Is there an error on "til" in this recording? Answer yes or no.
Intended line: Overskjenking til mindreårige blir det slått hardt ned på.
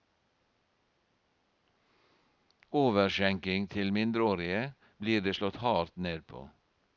no